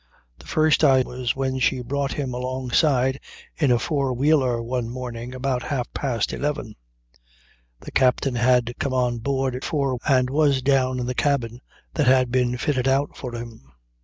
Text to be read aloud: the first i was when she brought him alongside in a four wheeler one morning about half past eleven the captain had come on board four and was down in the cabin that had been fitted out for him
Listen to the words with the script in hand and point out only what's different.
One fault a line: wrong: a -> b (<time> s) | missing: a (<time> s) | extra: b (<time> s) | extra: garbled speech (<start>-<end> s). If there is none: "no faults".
no faults